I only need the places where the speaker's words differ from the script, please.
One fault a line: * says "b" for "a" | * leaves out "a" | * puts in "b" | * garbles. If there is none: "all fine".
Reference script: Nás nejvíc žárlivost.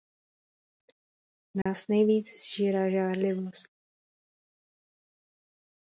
* puts in "sžírá"